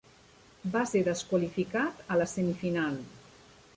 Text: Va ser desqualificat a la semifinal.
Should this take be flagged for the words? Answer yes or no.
no